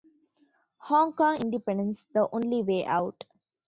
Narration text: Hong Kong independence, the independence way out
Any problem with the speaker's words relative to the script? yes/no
yes